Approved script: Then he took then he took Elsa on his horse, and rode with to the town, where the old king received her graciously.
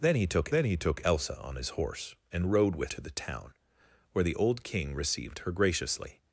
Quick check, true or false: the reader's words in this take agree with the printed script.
true